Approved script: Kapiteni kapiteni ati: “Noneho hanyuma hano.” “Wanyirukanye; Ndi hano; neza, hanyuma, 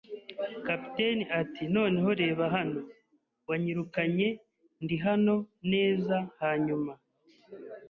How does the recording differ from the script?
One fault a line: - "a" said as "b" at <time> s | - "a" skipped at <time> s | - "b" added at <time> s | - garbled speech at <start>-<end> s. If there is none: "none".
- "kapiteni" skipped at 1.2 s
- "hanyuma" said as "reba" at 2.2 s